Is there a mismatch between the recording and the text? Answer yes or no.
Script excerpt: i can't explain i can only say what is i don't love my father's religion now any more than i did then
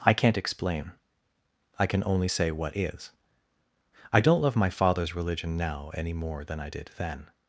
no